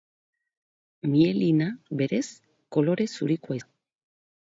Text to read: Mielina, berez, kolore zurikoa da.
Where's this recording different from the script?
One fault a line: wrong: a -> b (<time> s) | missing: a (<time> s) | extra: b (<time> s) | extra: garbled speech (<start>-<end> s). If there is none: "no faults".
no faults